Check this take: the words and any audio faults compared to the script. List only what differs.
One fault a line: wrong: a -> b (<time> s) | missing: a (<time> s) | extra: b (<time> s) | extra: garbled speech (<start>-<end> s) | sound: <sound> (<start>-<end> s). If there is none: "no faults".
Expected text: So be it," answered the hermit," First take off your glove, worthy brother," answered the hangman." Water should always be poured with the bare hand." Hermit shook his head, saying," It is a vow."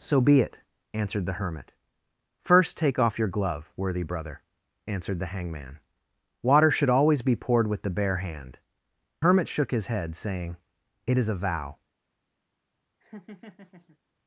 sound: laugh (13.0-14.0 s)